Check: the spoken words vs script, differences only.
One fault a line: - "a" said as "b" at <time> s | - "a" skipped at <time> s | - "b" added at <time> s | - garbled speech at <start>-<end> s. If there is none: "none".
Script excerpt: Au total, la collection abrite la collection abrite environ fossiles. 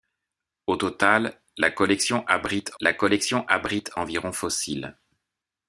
none